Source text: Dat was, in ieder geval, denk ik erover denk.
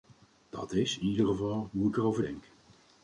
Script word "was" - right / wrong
wrong